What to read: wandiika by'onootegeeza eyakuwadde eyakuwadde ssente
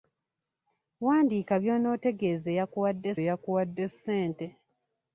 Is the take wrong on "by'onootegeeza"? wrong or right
right